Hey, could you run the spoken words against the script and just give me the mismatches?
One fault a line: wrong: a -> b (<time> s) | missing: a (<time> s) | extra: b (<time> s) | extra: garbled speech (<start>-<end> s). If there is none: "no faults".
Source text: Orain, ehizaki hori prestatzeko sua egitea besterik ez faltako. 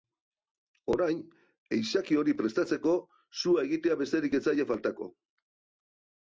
extra: zaie (4.5 s)